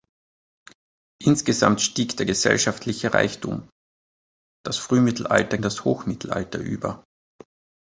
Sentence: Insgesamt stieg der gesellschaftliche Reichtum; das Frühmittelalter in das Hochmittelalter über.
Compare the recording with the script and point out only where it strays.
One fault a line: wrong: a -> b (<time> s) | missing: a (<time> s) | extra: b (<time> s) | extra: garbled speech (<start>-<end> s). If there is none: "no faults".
no faults